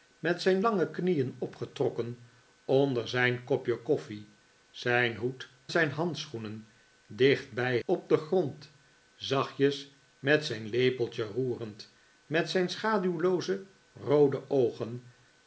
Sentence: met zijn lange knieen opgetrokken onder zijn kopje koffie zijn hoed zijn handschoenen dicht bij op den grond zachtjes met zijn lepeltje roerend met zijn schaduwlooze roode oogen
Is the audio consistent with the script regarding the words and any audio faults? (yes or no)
yes